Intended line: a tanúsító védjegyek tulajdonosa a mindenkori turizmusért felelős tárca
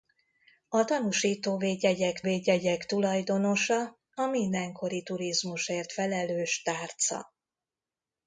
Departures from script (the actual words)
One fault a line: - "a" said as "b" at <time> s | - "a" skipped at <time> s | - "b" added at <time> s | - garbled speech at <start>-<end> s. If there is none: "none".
- "védjegyek" added at 2.2 s